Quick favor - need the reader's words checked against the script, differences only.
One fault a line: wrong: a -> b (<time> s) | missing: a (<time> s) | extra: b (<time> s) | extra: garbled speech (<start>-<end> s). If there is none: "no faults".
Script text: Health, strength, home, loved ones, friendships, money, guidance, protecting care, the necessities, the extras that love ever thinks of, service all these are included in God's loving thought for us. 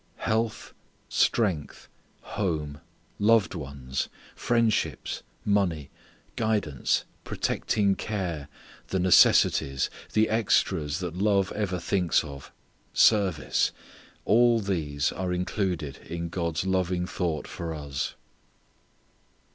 no faults